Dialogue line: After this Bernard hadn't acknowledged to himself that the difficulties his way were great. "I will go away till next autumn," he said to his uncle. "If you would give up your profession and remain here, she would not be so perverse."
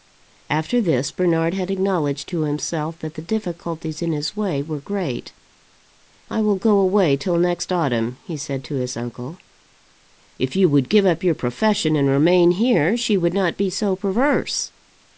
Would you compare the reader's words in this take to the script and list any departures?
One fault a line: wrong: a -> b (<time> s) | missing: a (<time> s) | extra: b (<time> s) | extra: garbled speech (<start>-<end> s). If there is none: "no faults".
wrong: hadn't -> had (1.5 s)
extra: in (4.0 s)